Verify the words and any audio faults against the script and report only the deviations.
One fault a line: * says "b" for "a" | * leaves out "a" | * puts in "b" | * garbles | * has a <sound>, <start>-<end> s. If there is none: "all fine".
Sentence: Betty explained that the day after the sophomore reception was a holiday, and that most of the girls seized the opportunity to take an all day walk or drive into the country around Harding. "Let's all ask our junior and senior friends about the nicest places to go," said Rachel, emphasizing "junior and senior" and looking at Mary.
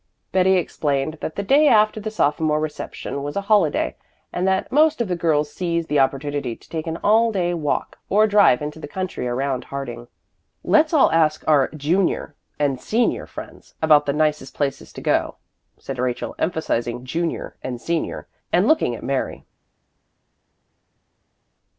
all fine